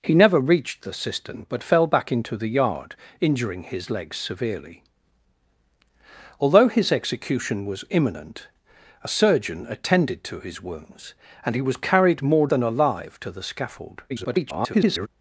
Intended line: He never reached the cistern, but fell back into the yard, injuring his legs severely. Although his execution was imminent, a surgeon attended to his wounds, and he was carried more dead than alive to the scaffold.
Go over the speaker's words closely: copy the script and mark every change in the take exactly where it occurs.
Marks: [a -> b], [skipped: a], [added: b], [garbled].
He never reached the cistern, but fell back into the yard, injuring his legs severely. Although his execution was imminent, a surgeon attended to his wounds, and he was carried more [skipped: dead] than alive to the scaffold. [garbled]